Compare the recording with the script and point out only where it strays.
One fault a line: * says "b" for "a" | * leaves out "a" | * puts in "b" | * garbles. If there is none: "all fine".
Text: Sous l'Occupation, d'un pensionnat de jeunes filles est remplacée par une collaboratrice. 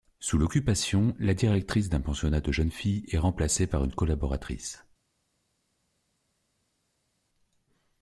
* puts in "la directrice"